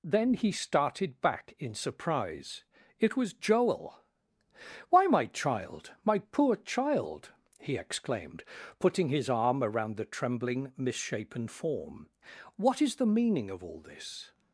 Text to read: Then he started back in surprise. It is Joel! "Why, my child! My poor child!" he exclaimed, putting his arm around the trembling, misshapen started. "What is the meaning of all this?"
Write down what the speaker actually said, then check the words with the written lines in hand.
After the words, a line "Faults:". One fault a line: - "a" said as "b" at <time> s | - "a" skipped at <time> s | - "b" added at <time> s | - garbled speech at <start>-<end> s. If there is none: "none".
Then he started back in surprise. It was Joel! "Why, my child! My poor child!" he exclaimed, putting his arm around the trembling, misshapen form. "What is the meaning of all this?"
Faults:
- "is" said as "was" at 3.1 s
- "started" said as "form" at 11.5 s